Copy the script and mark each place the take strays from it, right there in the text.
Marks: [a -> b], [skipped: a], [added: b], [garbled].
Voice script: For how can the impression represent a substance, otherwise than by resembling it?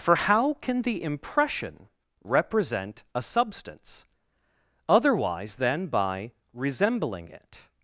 For how can the impression represent a substance, otherwise than by resembling it?